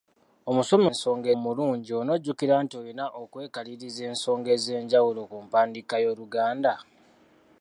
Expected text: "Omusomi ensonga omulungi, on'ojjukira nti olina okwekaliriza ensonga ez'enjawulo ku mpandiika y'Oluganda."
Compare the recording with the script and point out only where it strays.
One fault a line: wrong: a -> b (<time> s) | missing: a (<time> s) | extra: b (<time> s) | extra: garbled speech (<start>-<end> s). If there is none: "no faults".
no faults